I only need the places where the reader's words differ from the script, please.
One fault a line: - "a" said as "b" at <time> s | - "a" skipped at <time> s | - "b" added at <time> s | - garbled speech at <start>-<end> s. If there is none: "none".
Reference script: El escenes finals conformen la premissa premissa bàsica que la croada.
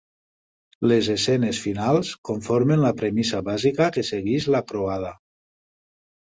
- "El" said as "Les" at 0.9 s
- "premissa" skipped at 3.4 s
- "segueix" added at 4.1 s